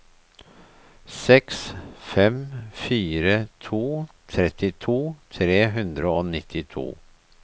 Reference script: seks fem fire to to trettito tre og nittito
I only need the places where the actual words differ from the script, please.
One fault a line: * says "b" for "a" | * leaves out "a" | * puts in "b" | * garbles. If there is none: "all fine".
* leaves out "to"
* puts in "hundre"